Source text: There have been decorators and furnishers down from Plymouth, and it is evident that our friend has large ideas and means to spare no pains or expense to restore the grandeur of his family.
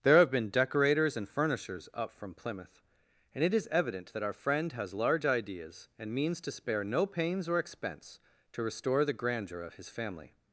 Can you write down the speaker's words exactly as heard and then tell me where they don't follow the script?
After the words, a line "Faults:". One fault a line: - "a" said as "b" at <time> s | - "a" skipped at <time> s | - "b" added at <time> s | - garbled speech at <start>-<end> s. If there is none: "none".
There have been decorators and furnishers up from Plymouth, and it is evident that our friend has large ideas and means to spare no pains or expense to restore the grandeur of his family.
Faults:
- "down" said as "up" at 1.9 s